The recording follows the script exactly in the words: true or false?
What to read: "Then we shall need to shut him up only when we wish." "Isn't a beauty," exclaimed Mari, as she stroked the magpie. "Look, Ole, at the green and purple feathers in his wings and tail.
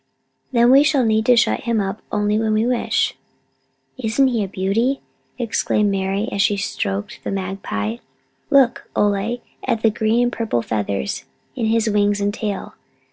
false